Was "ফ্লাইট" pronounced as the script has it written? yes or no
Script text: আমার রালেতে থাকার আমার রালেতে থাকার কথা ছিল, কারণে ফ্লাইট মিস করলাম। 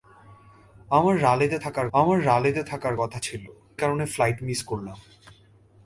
yes